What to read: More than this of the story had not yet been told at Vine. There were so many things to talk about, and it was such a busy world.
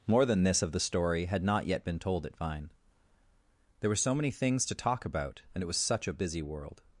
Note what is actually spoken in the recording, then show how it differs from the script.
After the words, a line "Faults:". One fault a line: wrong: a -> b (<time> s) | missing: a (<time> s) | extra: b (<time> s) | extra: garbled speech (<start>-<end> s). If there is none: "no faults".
More than this of the story had not yet been told at Vine. There were so many things to talk about, and it was such a busy world.
Faults:
no faults